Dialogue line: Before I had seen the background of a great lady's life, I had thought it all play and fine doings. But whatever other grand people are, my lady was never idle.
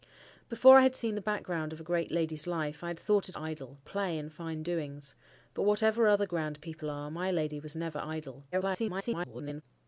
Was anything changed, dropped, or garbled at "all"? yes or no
yes